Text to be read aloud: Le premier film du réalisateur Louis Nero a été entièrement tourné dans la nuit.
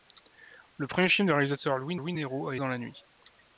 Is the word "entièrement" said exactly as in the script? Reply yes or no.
no